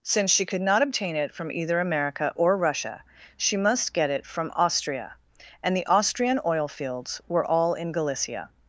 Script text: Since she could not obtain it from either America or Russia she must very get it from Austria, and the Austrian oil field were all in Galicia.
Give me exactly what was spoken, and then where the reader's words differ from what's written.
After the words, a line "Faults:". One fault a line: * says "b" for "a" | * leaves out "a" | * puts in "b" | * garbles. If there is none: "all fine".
Since she could not obtain it from either America or Russia she must get it from Austria, and the Austrian oil fields were all in Galicia.
Faults:
* leaves out "very"
* says "fields" for "field"